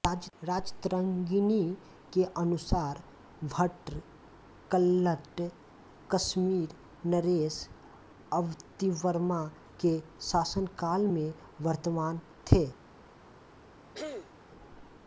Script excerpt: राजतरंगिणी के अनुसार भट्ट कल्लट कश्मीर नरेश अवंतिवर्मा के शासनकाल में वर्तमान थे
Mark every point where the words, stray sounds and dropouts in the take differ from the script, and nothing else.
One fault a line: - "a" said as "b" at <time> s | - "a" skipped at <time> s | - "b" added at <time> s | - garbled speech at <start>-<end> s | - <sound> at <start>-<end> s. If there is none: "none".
- throat clearing at 13.9-14.3 s